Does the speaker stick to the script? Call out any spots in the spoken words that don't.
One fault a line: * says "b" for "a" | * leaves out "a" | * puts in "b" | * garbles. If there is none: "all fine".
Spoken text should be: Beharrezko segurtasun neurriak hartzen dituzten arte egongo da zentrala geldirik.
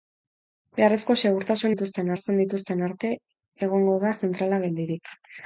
* says "dituzten" for "neurriak"